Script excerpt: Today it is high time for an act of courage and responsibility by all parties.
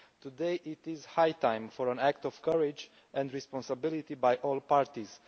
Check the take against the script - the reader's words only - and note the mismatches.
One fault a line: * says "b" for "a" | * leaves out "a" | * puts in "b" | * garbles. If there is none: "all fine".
all fine